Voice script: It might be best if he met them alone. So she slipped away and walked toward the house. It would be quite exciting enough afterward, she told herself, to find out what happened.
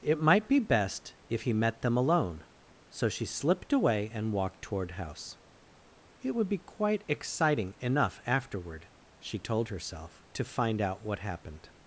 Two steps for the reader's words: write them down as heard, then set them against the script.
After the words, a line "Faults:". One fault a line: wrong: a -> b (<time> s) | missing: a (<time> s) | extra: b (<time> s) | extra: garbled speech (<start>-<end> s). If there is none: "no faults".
It might be best if he met them alone. So she slipped away and walked toward house. It would be quite exciting enough afterward, she told herself, to find out what happened.
Faults:
missing: the (4.9 s)